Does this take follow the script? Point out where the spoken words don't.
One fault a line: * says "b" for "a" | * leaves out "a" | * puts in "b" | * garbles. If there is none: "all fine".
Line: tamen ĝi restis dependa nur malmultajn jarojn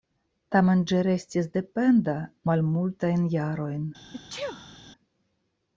* leaves out "nur"